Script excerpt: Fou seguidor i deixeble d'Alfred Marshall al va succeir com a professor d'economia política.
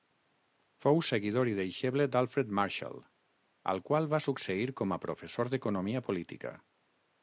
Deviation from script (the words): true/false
true